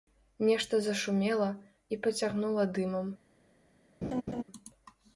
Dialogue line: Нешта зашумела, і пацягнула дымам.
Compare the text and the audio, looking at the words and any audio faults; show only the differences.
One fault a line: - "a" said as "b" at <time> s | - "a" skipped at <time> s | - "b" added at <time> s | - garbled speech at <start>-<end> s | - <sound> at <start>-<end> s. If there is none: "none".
- laugh at 4.0-4.4 s